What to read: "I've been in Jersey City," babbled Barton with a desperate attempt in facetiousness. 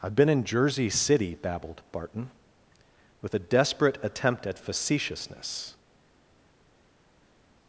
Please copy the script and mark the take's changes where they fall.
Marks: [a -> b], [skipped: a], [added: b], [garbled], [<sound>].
"I've been in Jersey City," babbled Barton with a desperate attempt [in -> at] facetiousness.